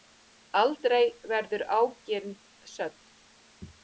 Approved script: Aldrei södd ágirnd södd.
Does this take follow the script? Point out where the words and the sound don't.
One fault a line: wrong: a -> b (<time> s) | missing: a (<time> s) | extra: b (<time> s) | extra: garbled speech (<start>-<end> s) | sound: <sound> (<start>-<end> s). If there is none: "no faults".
wrong: södd -> verður (1.3 s)